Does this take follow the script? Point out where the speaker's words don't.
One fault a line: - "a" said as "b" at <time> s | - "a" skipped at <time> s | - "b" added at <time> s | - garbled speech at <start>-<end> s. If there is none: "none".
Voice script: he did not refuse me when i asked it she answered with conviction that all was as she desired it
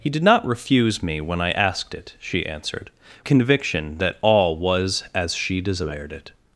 - "with" skipped at 2.9 s